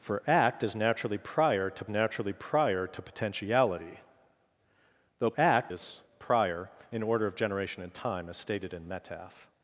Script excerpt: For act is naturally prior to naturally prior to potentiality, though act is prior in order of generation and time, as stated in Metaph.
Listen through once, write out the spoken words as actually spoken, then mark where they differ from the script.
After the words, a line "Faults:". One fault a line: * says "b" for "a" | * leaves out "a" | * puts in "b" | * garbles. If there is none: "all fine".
For act is naturally prior to naturally prior to potentiality, though act is prior in order of generation and time, as stated in Metaph.
Faults:
all fine